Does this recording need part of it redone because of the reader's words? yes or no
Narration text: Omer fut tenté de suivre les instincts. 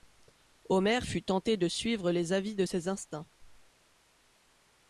yes